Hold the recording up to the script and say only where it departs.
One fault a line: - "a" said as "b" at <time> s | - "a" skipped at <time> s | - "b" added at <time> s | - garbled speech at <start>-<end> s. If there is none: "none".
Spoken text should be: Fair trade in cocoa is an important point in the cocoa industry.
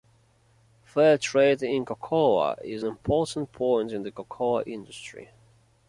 - "an" skipped at 2.8 s